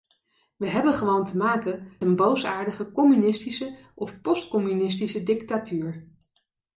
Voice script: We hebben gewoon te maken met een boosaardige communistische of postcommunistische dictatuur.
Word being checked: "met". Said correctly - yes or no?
no